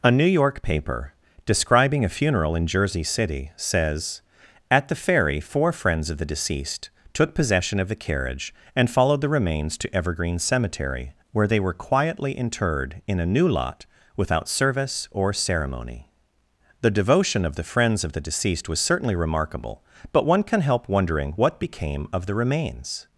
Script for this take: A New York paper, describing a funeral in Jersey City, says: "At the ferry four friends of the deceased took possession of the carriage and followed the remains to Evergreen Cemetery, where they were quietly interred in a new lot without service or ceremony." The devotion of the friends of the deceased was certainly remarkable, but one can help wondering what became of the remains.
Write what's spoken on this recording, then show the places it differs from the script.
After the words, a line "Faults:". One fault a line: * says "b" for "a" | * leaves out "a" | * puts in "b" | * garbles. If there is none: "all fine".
A New York paper, describing a funeral in Jersey City, says: "At the ferry four friends of the deceased took possession of the carriage and followed the remains to Evergreen Cemetery, where they were quietly interred in a new lot without service or ceremony." The devotion of the friends of the deceased was certainly remarkable, but one can help wondering what became of the remains.
Faults:
all fine